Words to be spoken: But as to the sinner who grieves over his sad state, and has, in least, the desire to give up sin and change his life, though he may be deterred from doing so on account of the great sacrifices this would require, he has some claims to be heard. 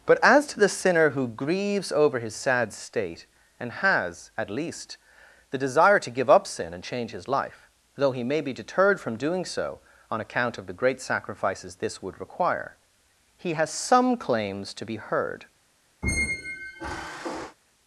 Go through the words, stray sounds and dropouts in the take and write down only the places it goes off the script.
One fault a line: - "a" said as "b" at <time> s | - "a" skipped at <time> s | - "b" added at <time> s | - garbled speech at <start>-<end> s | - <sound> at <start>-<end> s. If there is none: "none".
- "in" said as "at" at 4.4 s
- squeak at 16.0-17.6 s